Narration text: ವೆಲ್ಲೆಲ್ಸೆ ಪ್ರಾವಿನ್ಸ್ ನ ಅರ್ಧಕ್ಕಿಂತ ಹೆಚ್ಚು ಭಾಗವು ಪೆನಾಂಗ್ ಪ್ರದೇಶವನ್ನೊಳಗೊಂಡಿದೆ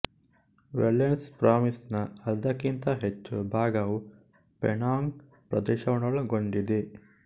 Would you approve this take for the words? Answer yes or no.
yes